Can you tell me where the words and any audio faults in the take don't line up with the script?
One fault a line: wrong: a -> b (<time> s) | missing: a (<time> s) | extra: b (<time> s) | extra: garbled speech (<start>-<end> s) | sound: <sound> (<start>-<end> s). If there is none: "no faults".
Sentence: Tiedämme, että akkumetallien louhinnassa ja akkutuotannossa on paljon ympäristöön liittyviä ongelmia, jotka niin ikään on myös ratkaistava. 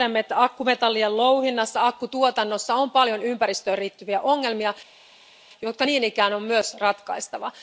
no faults